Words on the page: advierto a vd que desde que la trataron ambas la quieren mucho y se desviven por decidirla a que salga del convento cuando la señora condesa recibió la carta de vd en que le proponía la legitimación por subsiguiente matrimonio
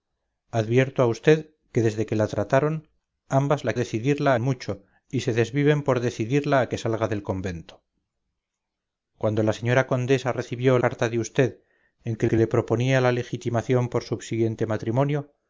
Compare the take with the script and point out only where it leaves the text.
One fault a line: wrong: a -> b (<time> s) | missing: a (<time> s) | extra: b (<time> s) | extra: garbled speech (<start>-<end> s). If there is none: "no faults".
wrong: quieren -> decidirla (3.7 s)
missing: la (10.8 s)
extra: que (12.2 s)